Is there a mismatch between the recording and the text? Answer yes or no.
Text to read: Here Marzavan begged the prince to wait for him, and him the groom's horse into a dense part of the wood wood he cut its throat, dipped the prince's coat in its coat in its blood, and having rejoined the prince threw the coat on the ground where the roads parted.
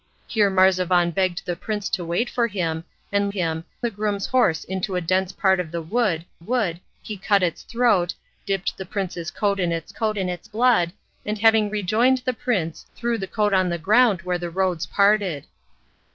no